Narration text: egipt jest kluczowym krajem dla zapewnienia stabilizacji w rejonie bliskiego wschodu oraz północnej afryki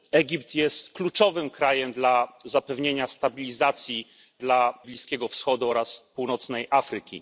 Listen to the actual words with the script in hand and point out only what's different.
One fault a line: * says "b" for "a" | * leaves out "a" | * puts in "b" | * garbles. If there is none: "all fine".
* says "dla" for "rejonie"